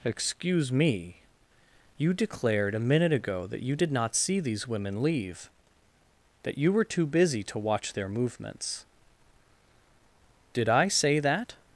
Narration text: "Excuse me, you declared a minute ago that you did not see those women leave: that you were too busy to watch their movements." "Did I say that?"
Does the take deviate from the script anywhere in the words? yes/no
yes